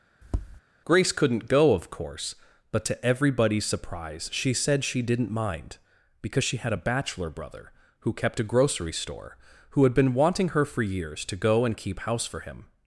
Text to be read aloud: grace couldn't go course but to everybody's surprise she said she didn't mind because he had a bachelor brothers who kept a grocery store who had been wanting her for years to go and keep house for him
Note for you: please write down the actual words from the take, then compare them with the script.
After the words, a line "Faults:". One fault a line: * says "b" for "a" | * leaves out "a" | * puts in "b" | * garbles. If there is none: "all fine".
grace couldn't go of course but to everybody's surprise she said she didn't mind because she had a bachelor brother who kept a grocery store who had been wanting her for years to go and keep house for him
Faults:
* puts in "of"
* says "she" for "he"
* says "brother" for "brothers"